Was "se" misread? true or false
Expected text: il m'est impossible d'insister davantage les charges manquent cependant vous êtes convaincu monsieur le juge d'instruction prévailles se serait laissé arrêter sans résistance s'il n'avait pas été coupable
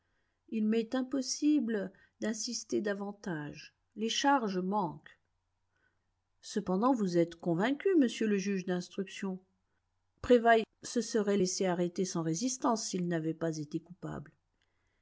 false